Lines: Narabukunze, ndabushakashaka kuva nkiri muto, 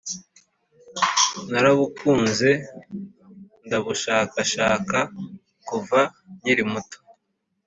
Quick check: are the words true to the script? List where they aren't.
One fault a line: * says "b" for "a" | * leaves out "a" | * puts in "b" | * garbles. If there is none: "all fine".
all fine